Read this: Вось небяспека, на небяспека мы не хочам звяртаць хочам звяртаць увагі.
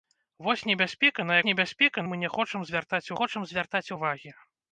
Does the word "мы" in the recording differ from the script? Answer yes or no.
no